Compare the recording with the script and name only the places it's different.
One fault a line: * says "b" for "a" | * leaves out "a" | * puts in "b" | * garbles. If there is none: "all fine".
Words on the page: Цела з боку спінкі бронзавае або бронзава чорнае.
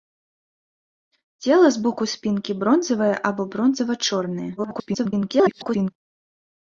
* garbles